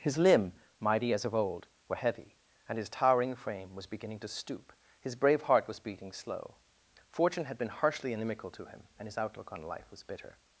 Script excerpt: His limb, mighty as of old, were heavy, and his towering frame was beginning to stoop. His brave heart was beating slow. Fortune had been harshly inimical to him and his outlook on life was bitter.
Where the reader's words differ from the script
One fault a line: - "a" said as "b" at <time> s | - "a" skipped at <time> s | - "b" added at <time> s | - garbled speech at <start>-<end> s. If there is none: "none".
none